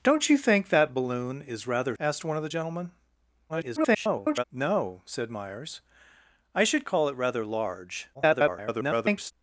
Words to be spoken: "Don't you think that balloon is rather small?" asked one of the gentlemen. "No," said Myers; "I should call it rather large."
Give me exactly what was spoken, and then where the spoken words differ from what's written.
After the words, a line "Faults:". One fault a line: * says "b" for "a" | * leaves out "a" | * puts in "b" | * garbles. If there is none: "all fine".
"Don't you think that balloon is rather?" asked one of the gentlemen. [garbled] "No," said Myers; "I should call it rather large." [garbled]
Faults:
* leaves out "small"
* garbles
* garbles